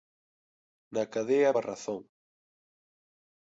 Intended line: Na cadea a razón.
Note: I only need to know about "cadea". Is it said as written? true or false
true